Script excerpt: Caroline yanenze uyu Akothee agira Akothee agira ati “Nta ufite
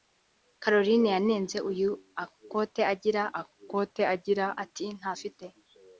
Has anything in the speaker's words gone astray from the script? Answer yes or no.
no